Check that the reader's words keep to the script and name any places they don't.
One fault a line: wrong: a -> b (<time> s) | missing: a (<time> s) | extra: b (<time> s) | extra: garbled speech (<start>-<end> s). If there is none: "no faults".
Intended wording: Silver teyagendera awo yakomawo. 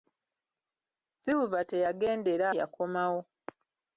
missing: awo (2.5 s)